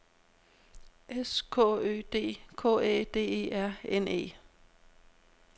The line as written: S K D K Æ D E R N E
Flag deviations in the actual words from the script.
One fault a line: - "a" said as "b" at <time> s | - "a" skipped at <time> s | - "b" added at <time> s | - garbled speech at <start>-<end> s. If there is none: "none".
- "Ø" added at 1.6 s